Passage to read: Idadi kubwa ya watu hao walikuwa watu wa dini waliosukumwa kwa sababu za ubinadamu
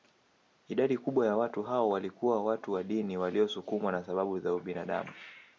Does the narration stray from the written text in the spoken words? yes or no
yes